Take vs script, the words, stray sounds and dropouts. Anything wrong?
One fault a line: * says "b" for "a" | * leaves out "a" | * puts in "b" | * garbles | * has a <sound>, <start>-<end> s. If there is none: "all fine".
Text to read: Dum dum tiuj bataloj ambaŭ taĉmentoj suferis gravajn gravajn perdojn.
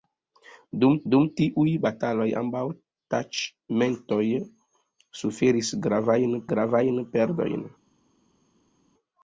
all fine